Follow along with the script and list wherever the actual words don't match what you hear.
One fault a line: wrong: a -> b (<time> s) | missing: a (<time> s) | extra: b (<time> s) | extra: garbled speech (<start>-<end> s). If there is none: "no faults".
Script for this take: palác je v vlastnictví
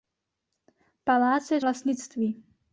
no faults